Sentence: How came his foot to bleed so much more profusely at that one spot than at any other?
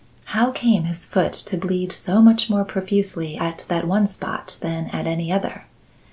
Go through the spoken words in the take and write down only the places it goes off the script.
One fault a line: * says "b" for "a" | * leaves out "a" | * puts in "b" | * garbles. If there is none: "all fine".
all fine